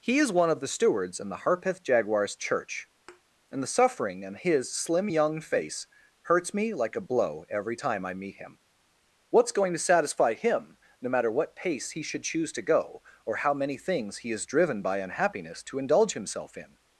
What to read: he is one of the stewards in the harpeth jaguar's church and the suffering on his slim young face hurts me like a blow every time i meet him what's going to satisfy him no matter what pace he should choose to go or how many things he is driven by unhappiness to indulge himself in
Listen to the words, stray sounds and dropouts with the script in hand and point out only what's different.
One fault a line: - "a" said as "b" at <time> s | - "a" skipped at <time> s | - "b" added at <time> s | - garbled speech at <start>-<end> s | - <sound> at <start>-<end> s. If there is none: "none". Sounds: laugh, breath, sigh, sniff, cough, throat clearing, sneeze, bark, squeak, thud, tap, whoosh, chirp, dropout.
- thud at 3.1-3.2 s
- "on" said as "in" at 4.2 s